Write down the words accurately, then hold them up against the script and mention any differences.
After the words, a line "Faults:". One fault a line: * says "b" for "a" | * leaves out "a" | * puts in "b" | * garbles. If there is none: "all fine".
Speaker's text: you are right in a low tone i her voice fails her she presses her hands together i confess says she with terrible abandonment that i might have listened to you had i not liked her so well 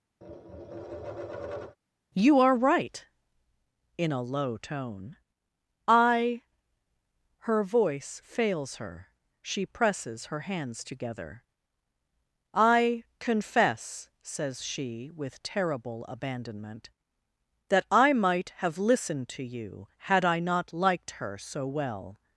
you are right in a low tone i her voice fails her she presses her hands together i confess says she with terrible abandonment that i might have listened to you had i not liked her so well
Faults:
all fine